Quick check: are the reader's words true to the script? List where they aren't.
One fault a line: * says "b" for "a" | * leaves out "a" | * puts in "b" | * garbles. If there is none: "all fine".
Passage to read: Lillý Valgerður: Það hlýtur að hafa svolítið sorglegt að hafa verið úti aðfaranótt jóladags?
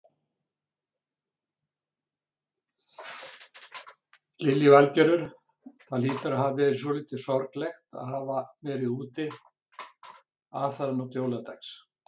* puts in "verið"